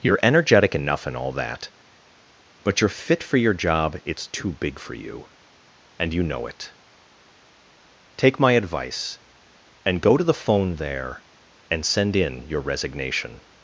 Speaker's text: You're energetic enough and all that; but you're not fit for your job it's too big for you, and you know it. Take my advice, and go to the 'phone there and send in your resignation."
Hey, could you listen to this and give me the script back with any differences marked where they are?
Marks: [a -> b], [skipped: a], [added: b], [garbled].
You're energetic enough and all that; but you're [skipped: not] fit for your job it's too big for you, and you know it. Take my advice, and go to the 'phone there and send in your resignation."